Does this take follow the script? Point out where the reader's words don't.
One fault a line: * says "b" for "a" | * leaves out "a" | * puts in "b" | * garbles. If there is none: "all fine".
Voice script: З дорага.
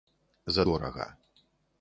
all fine